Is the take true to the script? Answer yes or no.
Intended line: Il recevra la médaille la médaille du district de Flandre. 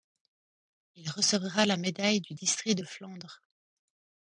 no